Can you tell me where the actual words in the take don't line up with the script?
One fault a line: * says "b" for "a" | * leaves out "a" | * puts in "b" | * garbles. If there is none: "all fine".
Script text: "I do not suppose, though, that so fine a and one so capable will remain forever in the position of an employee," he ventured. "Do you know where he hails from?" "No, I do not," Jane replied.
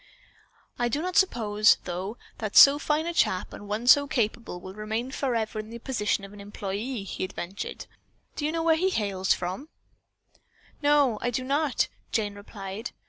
* puts in "chap"